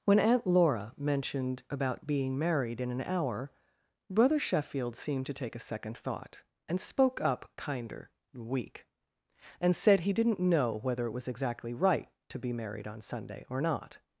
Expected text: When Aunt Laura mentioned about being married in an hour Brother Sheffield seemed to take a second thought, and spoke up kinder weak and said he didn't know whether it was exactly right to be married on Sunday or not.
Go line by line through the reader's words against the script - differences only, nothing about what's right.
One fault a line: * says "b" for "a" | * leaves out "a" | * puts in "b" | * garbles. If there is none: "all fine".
all fine